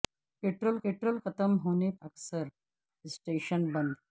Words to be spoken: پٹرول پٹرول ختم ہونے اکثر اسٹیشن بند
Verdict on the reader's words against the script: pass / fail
pass